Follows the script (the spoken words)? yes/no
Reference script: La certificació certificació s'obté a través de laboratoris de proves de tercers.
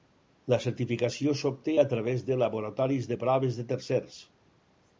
no